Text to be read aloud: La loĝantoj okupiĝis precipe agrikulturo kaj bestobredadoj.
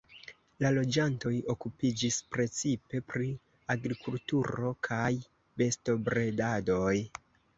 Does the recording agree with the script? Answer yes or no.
no